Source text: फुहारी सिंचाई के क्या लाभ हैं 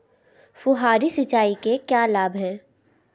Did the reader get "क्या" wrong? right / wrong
right